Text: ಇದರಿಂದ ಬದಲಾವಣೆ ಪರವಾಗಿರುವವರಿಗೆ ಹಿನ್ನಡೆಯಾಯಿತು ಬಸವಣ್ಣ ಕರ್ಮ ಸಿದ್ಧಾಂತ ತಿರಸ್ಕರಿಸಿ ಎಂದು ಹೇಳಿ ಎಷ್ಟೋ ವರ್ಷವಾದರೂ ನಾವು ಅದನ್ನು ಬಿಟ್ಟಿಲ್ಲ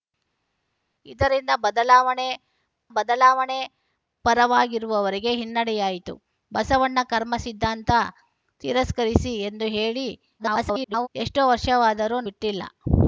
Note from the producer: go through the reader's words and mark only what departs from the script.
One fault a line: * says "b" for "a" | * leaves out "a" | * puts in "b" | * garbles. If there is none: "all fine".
* puts in "ಬದಲಾವಣೆ"
* garbles
* leaves out "ನಾವು ಅದನ್ನು"